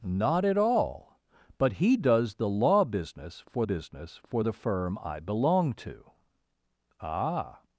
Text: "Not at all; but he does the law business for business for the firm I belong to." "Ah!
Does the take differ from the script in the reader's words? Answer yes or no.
no